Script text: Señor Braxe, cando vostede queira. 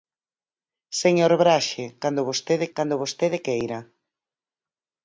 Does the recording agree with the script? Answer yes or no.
no